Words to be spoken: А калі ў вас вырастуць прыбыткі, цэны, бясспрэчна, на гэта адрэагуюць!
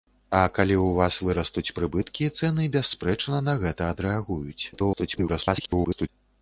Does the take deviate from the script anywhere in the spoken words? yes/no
yes